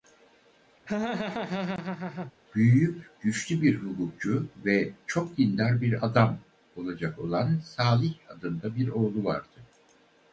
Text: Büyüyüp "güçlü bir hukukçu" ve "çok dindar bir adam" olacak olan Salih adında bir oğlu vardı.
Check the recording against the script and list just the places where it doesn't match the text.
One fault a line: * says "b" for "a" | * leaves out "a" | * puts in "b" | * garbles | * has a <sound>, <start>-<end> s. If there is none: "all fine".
* has a laugh, 0.9-2.3 s